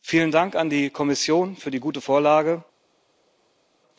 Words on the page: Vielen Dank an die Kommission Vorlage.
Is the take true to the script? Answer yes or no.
no